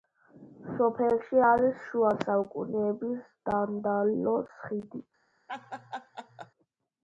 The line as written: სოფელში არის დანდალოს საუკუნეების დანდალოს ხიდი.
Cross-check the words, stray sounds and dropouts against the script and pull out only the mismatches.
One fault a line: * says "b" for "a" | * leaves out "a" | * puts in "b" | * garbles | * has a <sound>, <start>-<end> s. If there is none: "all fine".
* says "შუა" for "დანდალოს"
* has a laugh, 5.5-6.5 s